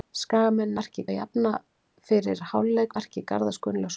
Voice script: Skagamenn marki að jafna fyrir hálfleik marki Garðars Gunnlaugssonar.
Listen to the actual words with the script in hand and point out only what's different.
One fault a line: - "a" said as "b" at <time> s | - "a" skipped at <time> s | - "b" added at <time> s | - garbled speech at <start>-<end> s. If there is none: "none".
none